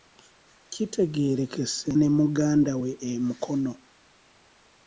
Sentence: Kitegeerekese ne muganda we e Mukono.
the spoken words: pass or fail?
pass